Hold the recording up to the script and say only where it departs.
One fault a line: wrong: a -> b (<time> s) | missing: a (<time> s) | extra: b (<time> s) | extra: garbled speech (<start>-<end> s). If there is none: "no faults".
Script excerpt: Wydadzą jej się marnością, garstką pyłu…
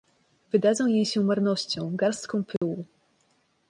no faults